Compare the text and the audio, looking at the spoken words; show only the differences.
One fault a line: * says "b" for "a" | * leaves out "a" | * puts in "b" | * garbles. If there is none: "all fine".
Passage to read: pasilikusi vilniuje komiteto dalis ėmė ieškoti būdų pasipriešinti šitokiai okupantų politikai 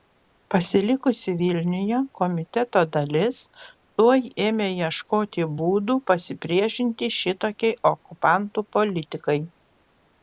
* puts in "tuoj"